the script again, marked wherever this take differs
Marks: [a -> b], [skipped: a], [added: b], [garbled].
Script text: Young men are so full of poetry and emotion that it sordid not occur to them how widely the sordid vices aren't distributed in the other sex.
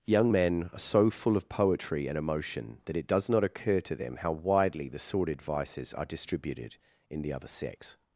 Young men are so full of poetry and emotion that it [sordid -> does] not occur to them how widely the sordid vices [aren't -> are] distributed in the other sex.